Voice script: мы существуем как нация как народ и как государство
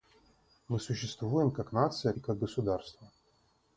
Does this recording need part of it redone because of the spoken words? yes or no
yes